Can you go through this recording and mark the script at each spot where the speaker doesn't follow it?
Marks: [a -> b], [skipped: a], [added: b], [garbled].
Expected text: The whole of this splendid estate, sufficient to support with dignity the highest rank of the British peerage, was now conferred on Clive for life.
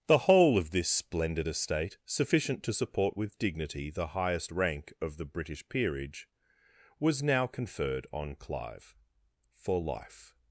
The whole of this splendid estate, sufficient to support with dignity the highest rank of the British peerage, was now conferred on Clive for life.